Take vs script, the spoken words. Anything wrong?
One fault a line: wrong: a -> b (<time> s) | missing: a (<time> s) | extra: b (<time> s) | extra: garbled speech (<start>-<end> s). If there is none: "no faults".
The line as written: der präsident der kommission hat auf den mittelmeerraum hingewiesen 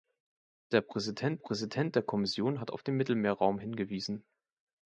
extra: präsident (1.4 s)